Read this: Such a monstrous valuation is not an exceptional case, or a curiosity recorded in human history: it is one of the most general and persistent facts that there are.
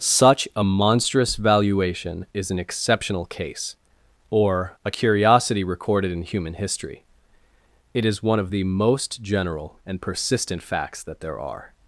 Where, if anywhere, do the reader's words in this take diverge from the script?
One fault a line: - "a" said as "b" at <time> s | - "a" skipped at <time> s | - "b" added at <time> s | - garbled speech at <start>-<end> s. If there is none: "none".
- "not" skipped at 2.5 s